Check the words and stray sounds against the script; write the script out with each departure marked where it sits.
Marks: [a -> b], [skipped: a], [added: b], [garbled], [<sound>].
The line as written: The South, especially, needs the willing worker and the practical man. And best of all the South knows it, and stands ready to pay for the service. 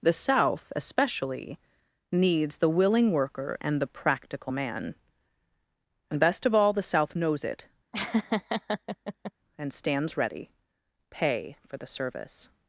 The South, especially, needs the willing worker and the practical man. And best of all the South knows it, [laugh] and stands ready [skipped: to] pay for the service.